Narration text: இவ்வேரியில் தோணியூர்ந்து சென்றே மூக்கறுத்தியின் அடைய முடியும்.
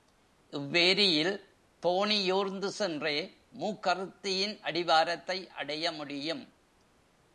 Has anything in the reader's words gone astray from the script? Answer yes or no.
yes